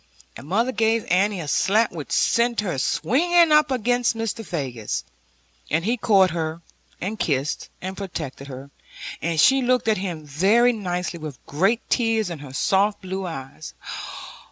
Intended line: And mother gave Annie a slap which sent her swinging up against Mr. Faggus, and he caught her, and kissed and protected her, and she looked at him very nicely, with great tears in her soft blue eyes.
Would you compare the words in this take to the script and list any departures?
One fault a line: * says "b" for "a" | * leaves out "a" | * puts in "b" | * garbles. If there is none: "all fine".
all fine